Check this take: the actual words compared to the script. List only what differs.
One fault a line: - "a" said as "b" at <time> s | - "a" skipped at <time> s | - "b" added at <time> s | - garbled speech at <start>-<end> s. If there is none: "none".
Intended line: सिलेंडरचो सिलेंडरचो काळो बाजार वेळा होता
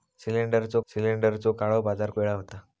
none